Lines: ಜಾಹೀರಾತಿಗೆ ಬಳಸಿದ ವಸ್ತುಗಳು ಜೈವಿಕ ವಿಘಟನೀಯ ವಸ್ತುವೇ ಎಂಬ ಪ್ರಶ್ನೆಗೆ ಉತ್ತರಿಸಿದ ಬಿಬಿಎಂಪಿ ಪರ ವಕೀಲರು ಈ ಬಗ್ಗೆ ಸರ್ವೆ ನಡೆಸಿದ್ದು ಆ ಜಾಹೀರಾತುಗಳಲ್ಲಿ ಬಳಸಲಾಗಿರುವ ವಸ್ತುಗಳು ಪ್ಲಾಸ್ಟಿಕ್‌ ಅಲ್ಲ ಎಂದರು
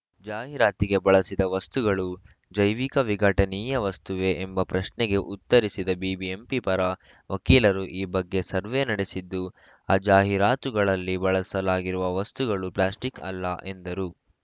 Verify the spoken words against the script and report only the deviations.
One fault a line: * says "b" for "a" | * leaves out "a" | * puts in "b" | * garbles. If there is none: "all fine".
all fine